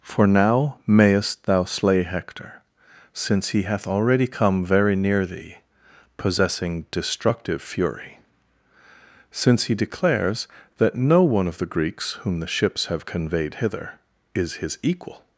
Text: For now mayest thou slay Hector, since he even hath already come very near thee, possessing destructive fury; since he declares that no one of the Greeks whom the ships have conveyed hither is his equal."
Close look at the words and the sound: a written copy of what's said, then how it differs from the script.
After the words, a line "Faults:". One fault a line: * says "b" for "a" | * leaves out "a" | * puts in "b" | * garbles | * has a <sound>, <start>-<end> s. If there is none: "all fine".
For now mayest thou slay Hector, since he hath already come very near thee, possessing destructive fury; since he declares that no one of the Greeks whom the ships have conveyed hither is his equal."
Faults:
* leaves out "even"